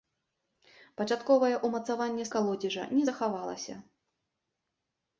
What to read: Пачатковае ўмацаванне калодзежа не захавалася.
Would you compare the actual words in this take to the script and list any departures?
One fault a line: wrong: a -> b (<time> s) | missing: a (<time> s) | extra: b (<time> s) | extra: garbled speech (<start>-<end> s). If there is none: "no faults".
no faults